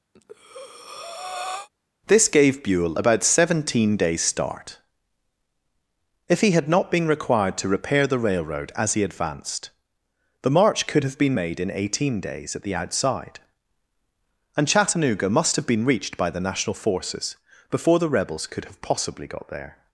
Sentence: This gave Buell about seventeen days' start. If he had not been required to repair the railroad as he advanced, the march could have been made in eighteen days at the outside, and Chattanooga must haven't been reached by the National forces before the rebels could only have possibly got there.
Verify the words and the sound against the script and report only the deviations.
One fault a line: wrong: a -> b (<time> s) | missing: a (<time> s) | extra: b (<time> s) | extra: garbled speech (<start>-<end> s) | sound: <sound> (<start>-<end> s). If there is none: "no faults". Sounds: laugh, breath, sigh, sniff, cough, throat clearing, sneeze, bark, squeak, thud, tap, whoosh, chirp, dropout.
sound: breath (0.1-1.7 s)
wrong: haven't -> have (15.5 s)
missing: only (18.6 s)